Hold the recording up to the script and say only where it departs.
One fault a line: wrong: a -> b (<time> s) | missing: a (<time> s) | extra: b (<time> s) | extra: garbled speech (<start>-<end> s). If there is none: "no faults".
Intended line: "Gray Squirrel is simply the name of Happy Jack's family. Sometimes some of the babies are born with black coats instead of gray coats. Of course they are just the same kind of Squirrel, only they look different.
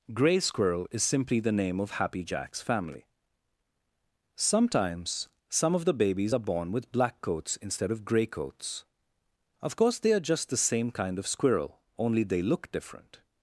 no faults